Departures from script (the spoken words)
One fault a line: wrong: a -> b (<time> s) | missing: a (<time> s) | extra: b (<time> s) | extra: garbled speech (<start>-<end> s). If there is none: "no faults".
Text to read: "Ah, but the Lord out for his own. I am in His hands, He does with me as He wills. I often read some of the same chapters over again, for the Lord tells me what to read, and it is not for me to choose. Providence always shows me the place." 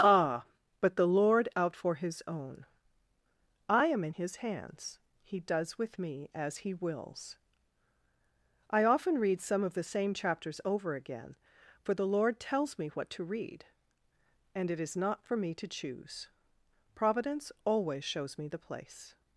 no faults